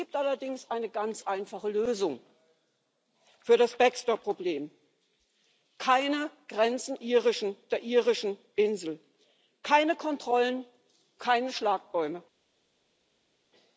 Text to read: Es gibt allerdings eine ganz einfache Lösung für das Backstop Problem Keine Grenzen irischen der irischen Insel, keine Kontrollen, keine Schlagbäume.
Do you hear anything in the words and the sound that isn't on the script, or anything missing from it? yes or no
no